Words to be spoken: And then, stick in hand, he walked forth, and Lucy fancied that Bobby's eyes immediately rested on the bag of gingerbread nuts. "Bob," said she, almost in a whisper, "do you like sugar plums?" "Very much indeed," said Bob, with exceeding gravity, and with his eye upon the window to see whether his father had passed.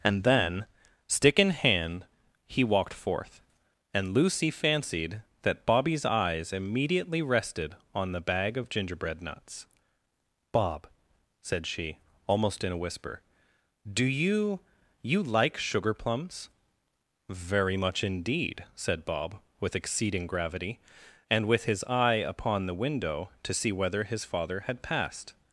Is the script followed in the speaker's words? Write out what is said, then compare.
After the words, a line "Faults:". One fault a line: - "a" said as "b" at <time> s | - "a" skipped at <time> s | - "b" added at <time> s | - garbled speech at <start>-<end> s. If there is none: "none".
And then, stick in hand, he walked forth, and Lucy fancied that Bobby's eyes immediately rested on the bag of gingerbread nuts. "Bob," said she, almost in a whisper, "do you you like sugar plums?" "Very much indeed," said Bob, with exceeding gravity, and with his eye upon the window to see whether his father had passed.
Faults:
- "you" added at 15.0 s